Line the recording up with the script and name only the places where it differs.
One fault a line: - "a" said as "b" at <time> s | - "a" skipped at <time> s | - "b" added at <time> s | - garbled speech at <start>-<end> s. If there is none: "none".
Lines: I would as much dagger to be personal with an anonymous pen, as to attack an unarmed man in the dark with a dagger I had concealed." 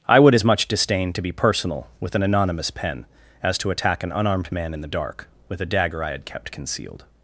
- "dagger" said as "disdain" at 0.7 s
- "kept" added at 6.2 s